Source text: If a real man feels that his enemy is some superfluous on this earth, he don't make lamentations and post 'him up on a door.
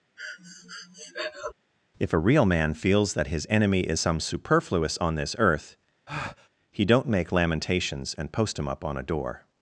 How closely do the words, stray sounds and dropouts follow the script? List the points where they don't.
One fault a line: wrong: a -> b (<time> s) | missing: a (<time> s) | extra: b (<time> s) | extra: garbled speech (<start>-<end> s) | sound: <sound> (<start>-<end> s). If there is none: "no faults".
sound: breath (0.2-1.5 s)
sound: breath (6.1-6.5 s)